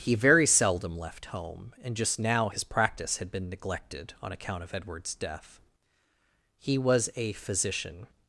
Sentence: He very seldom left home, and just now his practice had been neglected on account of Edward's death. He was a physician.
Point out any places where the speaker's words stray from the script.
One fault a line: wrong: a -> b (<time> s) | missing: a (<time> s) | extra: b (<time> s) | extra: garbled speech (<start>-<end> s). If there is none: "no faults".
no faults